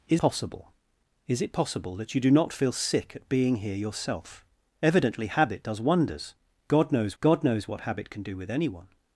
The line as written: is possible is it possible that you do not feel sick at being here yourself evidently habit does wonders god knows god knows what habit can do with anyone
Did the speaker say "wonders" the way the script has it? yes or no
yes